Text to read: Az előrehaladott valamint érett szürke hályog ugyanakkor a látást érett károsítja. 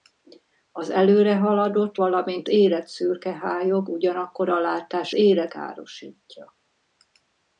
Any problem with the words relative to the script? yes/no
no